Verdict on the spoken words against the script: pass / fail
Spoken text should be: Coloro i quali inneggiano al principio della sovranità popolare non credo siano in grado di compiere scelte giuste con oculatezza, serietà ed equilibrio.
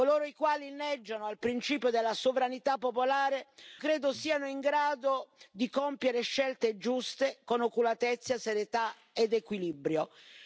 fail